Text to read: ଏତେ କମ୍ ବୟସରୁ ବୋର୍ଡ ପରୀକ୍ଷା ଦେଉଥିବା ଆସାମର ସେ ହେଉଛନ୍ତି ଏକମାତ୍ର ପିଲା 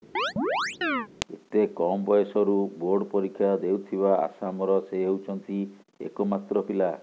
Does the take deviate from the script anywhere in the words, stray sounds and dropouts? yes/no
yes